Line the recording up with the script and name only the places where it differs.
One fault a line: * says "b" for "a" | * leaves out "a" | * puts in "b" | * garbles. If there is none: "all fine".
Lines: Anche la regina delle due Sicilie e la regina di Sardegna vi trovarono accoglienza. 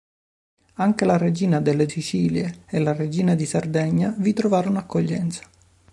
* leaves out "due"